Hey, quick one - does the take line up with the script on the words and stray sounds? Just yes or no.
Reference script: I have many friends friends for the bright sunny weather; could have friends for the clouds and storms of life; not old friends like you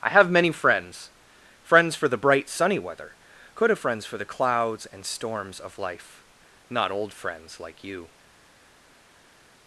yes